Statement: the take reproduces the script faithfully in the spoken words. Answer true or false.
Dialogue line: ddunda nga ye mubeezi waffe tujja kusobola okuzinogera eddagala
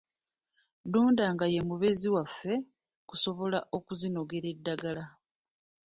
false